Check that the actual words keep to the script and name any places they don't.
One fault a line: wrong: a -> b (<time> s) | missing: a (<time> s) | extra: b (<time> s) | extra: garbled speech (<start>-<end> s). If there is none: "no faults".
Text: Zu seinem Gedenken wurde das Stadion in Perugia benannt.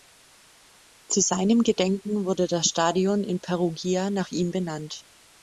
extra: nach ihm (4.1 s)